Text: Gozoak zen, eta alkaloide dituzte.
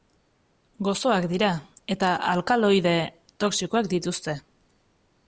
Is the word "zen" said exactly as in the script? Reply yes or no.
no